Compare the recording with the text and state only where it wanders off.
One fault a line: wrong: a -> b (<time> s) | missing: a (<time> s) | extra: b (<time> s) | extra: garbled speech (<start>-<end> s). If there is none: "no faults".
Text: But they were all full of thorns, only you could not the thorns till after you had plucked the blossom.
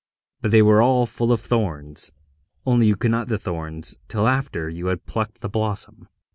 no faults